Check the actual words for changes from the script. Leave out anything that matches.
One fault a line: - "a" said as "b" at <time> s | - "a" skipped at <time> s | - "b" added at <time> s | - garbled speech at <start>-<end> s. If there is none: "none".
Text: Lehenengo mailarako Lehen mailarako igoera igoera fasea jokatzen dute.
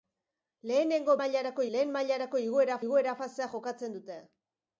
none